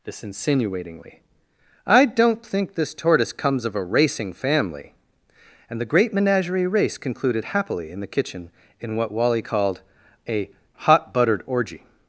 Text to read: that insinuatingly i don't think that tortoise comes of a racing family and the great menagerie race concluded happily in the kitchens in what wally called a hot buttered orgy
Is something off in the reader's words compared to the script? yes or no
yes